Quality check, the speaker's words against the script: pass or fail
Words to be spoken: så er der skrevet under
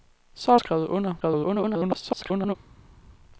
fail